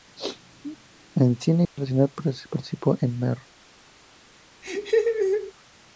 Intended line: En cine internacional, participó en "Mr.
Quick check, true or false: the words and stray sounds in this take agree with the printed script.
false